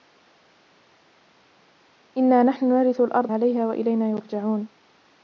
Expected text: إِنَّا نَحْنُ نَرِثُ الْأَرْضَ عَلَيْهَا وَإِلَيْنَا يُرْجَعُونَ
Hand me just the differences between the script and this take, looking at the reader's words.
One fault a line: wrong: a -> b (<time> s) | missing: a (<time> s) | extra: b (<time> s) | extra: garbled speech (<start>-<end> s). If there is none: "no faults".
no faults